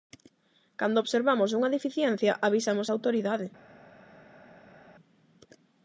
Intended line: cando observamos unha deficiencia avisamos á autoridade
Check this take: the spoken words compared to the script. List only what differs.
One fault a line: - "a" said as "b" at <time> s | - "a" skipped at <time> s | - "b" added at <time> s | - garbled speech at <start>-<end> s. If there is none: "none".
none